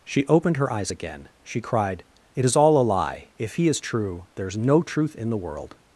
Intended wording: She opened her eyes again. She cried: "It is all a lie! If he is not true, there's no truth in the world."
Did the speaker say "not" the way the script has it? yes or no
no